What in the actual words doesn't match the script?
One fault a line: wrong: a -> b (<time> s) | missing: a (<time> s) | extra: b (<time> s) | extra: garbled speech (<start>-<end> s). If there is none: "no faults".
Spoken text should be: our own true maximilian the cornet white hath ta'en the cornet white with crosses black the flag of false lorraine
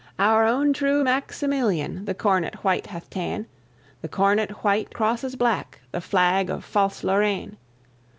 missing: with (5.0 s)